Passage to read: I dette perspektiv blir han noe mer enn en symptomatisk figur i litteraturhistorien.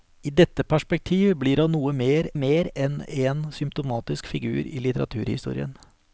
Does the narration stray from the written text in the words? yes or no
yes